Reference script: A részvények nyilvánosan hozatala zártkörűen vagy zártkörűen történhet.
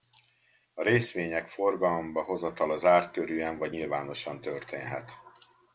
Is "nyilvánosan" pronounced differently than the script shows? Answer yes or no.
yes